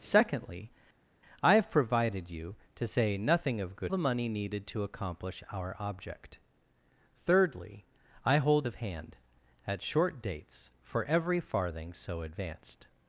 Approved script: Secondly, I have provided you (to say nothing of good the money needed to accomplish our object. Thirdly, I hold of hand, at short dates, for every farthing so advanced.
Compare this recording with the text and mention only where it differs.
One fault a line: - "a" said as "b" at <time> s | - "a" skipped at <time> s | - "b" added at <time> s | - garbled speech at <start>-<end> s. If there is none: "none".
none